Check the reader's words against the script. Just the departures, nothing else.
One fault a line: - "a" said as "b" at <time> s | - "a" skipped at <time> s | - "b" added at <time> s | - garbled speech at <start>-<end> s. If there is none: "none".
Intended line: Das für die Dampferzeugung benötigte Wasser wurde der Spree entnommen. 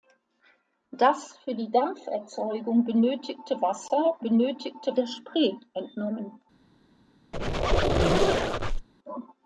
- "wurde" said as "benötigte" at 4.2 s